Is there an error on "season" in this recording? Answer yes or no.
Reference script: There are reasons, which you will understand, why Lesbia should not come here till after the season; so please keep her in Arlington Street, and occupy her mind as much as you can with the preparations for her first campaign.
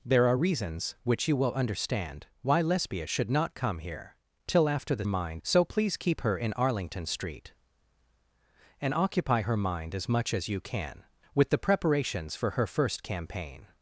yes